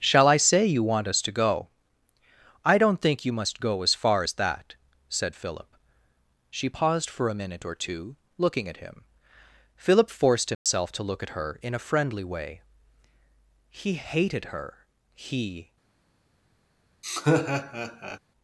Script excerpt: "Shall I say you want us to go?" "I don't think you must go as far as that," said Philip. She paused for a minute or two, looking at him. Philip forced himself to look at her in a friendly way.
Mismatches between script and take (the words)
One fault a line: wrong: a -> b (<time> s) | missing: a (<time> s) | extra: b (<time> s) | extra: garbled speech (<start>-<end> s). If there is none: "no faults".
extra: He hated her he (13.7 s)